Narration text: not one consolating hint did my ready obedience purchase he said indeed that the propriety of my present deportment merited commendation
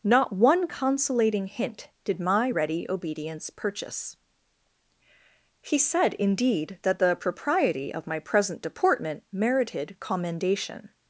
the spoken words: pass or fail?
pass